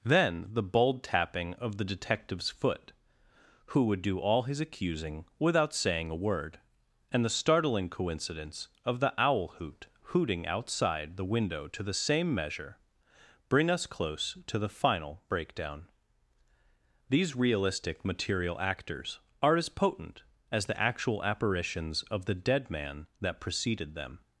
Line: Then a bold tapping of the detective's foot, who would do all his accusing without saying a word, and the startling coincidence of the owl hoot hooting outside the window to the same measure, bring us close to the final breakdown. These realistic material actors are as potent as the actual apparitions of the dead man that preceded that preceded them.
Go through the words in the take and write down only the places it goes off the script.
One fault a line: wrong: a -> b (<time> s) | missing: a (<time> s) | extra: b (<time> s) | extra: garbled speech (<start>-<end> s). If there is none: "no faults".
wrong: a -> the (0.5 s)
missing: that preceded (23.9 s)